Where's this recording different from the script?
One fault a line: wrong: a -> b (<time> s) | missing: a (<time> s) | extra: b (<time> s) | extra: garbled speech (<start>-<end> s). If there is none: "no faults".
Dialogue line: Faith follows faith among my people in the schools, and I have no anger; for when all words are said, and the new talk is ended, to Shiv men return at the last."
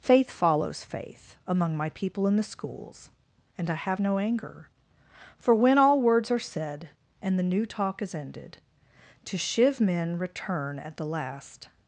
no faults